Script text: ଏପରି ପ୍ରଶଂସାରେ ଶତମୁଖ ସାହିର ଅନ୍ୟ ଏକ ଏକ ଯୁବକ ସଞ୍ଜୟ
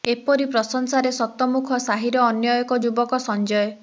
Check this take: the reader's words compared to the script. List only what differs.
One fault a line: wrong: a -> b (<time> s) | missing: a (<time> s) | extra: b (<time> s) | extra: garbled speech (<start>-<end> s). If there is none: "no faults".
missing: ଏକ (2.8 s)